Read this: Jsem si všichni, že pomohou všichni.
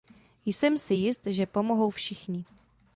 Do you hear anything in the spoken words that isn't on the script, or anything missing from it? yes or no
yes